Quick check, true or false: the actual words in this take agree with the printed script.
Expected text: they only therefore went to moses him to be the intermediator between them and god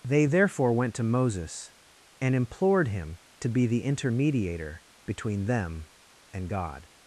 false